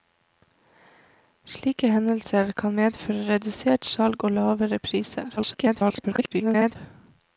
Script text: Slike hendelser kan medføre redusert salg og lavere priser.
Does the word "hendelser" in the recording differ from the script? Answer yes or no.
no